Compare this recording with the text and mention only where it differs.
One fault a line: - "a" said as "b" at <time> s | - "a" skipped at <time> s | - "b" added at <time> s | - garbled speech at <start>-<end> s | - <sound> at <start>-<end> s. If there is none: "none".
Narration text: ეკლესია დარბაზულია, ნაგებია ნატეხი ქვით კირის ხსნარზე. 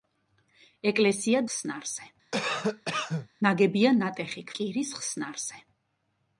- "დარბაზულია" said as "ხსნარზე" at 1.5 s
- cough at 2.3-3.3 s
- "ქვით" skipped at 4.5 s